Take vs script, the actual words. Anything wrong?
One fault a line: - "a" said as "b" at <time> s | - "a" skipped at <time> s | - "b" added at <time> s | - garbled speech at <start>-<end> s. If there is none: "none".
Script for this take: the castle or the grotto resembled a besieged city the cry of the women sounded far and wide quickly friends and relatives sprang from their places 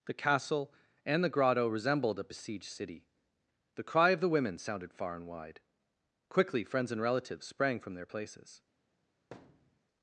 - "or" said as "and" at 1.1 s